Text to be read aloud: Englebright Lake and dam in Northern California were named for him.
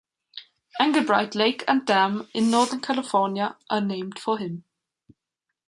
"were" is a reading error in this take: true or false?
true